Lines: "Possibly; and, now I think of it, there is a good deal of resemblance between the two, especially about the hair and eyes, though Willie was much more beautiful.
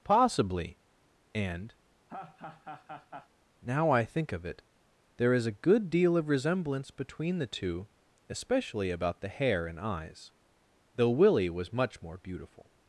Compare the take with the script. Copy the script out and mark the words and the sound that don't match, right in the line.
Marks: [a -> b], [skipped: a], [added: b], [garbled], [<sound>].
"Possibly; and, [laugh] now I think of it, there is a good deal of resemblance between the two, especially about the hair and eyes, though Willie was much more beautiful.